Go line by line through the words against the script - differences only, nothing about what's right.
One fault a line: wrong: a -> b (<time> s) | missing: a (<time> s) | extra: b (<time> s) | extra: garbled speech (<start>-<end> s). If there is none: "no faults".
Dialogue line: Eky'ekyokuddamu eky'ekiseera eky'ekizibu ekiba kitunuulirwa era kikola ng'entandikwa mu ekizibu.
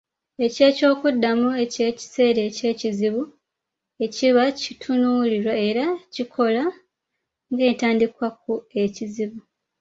wrong: mu -> ku (8.4 s)